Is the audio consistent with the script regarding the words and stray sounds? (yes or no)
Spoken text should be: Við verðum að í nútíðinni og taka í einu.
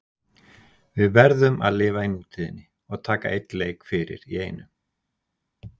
no